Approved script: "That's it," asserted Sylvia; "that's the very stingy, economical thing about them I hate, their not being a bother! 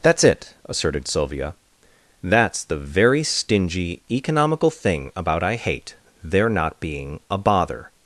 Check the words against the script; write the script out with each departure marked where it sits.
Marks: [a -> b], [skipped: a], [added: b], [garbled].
"That's it," asserted Sylvia; "that's the very stingy, economical thing about [skipped: them] I hate, their not being a bother!